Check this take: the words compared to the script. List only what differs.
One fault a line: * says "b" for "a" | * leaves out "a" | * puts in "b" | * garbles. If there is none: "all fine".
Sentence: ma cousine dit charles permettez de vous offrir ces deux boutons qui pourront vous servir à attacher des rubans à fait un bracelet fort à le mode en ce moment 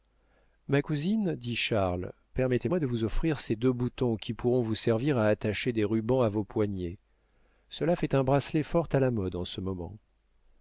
* puts in "moi"
* puts in "vos poignets cela"
* says "la" for "le"